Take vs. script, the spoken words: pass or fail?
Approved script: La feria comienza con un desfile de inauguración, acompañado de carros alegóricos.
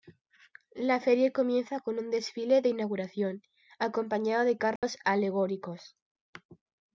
pass